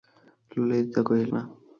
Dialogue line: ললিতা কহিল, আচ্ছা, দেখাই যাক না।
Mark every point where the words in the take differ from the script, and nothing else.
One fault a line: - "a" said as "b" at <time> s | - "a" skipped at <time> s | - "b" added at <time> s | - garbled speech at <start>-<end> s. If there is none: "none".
- "আচ্ছা দেখাই যাক" skipped at 1.3 s